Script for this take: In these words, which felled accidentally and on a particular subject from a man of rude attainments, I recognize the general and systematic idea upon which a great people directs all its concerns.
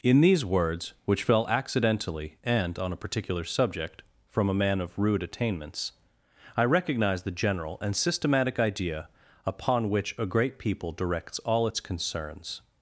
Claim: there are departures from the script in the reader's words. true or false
true